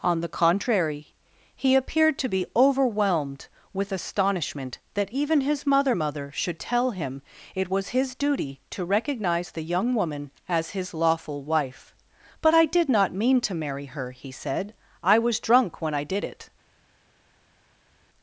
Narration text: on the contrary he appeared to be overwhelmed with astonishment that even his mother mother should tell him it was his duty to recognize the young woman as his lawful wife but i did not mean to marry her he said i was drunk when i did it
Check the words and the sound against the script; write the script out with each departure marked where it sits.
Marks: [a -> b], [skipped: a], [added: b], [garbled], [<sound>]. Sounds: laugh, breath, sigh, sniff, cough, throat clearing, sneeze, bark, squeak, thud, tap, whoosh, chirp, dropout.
on the contrary he appeared to be overwhelmed with astonishment that even his mother mother should tell him it was his duty to recognize the young woman as his lawful wife but i did not mean to marry her he said i was drunk when i did it